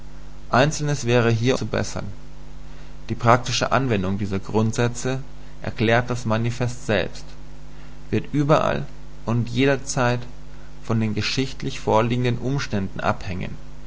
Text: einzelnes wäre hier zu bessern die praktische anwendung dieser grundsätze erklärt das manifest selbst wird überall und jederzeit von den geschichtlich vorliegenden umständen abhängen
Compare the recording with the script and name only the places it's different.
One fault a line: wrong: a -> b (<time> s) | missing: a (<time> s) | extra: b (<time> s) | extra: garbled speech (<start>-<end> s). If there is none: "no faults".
no faults